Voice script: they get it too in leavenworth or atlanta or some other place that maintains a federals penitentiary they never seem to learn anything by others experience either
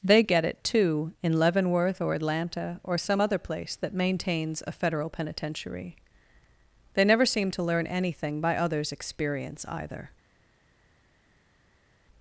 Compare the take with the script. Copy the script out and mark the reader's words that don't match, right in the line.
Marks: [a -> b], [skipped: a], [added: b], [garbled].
they get it too in leavenworth or atlanta or some other place that maintains a [federals -> federal] penitentiary they never seem to learn anything by others experience either